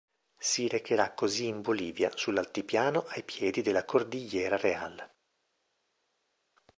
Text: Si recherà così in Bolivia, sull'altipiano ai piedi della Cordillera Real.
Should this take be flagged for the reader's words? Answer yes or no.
no